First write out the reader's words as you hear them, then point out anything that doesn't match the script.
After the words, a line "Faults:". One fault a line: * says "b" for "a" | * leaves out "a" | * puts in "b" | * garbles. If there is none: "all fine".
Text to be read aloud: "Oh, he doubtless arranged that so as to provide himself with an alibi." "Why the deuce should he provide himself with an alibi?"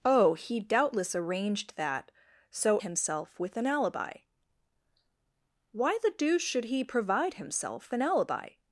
"Oh, he doubtless arranged that so himself with an alibi." "Why the deuce should he provide himself an alibi?"
Faults:
* leaves out "as to provide"
* leaves out "with"